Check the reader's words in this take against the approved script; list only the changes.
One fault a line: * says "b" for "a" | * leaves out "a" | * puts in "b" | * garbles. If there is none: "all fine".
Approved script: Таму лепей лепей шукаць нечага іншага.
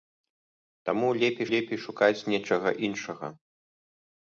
all fine